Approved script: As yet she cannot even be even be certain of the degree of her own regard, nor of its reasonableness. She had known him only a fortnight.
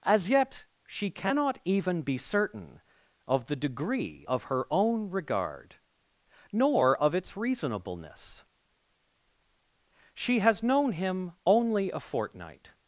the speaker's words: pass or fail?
fail